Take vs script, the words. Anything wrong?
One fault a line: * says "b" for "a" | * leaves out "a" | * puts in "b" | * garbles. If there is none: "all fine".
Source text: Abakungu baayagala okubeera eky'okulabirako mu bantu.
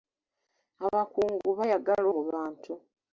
* leaves out "okubeera eky'okulabirako"